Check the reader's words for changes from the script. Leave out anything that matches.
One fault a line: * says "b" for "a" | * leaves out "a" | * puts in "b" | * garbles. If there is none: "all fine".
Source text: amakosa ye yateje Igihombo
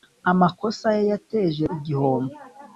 all fine